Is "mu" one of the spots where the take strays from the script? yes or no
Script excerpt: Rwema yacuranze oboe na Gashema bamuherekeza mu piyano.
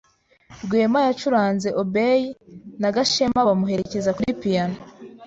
yes